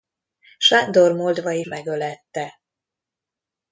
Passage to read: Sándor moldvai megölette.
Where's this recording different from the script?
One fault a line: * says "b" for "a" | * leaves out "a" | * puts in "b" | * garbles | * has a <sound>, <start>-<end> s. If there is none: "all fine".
all fine